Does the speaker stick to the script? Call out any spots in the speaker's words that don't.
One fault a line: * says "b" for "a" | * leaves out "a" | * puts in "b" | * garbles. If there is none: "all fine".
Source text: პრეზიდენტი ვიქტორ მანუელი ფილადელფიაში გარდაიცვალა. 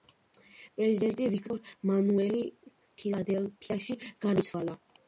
all fine